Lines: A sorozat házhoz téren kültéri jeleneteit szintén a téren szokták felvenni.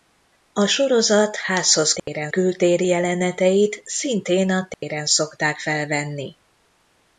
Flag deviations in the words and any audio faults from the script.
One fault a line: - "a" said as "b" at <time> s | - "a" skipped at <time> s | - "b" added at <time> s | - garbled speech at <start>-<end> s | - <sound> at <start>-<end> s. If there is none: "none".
- dropout at 2.0-2.1 s
- dropout at 4.7-4.8 s